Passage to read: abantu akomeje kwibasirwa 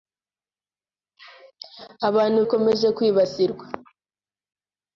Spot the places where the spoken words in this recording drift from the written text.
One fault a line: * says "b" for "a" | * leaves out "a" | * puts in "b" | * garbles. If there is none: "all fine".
all fine